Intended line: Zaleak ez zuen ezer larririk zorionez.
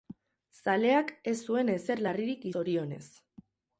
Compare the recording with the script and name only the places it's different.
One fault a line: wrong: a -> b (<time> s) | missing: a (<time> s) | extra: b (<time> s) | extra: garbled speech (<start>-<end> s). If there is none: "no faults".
no faults